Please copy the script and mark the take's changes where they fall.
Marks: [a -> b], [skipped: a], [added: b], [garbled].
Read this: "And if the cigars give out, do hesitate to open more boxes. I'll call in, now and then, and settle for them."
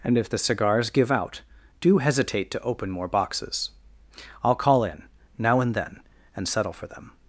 "And if the cigars give out, do hesitate to open more boxes. I'll call in, now and then, and settle for them."